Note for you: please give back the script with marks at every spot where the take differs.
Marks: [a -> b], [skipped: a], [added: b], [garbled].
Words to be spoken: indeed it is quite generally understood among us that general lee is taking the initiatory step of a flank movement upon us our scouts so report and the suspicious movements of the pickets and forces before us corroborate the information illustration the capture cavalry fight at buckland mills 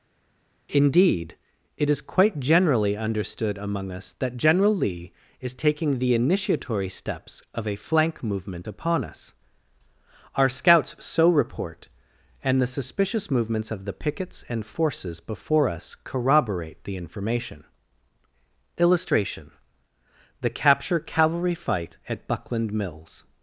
indeed it is quite generally understood among us that general lee is taking the initiatory [step -> steps] of a flank movement upon us our scouts so report and the suspicious movements of the pickets and forces before us corroborate the information illustration the capture cavalry fight at buckland mills